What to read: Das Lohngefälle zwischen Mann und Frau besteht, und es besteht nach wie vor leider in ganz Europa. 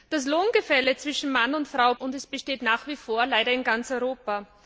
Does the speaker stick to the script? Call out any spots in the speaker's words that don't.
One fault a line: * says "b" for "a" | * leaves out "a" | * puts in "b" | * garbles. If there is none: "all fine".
* leaves out "besteht"